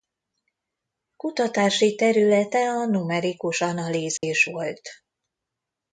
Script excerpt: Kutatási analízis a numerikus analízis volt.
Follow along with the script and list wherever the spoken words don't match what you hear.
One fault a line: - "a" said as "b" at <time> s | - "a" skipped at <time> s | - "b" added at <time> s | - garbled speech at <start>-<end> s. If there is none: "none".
- "analízis" said as "területe" at 1.9 s